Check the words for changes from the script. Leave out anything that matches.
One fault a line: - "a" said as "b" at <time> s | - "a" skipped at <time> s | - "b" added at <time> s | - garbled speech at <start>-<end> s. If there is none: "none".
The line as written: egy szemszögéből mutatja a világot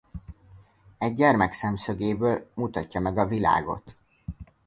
- "gyermek" added at 1.1 s
- "meg" added at 3.0 s